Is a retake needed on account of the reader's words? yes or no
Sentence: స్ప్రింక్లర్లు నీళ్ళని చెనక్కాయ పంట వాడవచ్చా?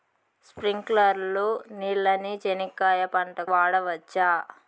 no